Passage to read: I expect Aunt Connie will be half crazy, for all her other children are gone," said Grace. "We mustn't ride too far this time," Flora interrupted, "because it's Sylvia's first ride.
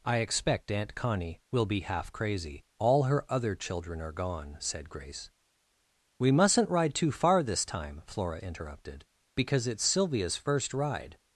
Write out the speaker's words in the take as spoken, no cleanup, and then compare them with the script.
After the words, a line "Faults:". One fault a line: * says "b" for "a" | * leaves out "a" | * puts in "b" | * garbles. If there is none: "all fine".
I expect Aunt Connie will be half crazy, all her other children are gone," said Grace. "We mustn't ride too far this time," Flora interrupted, "because it's Sylvia's first ride.
Faults:
* leaves out "for"